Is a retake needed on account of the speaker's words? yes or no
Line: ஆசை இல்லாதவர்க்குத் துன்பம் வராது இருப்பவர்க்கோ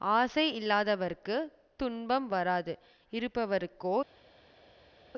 no